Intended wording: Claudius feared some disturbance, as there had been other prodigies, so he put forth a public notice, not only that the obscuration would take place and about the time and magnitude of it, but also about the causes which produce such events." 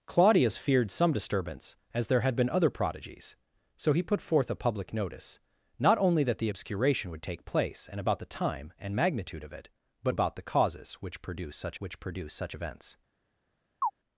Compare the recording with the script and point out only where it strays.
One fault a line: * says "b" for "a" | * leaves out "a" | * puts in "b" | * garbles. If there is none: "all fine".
* leaves out "also"
* puts in "which produce such"